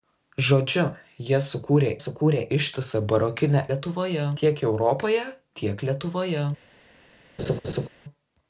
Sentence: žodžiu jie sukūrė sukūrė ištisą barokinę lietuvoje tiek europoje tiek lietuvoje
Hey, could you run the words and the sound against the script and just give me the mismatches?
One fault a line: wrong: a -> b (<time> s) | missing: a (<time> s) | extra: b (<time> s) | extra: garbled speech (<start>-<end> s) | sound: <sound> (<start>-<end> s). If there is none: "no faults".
sound: laugh (7.4-7.9 s)